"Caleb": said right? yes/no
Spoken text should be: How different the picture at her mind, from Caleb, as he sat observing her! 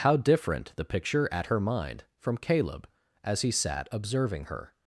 yes